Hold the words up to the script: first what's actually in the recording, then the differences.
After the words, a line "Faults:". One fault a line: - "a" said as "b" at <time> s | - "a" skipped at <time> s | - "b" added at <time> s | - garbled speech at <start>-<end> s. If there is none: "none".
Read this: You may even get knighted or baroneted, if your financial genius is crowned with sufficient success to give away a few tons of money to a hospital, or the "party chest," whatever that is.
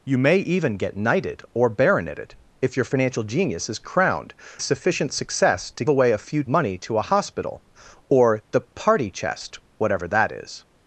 You may even get knighted or baroneted, if your financial genius is crowned sufficient success to away a few money to a hospital, or the "party chest," whatever that is.
Faults:
- "with" skipped at 4.3 s
- "give" skipped at 5.8 s
- "tons of" skipped at 6.4 s